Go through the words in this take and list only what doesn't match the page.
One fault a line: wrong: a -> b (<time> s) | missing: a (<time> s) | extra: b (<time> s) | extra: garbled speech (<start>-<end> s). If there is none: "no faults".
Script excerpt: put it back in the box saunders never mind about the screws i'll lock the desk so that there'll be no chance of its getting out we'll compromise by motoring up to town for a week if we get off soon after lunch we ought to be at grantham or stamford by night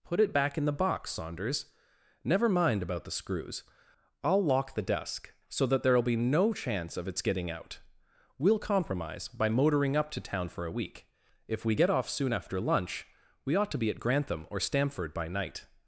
no faults